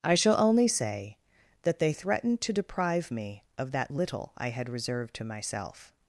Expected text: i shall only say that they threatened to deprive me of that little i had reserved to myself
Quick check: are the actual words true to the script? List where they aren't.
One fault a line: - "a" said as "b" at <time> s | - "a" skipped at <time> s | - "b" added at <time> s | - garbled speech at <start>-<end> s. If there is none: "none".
none